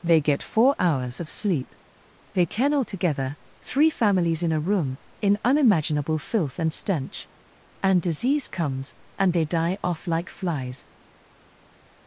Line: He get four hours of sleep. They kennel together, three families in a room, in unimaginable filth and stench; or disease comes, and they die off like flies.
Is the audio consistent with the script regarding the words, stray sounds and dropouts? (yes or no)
no